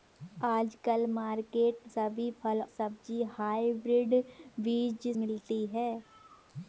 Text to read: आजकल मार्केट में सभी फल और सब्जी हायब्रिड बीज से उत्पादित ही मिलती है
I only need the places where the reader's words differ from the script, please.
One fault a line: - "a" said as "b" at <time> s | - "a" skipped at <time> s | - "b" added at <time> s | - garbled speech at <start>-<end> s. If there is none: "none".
- "में" skipped at 1.9 s
- "और" skipped at 2.6 s
- "से उत्पादित ही" skipped at 5.1 s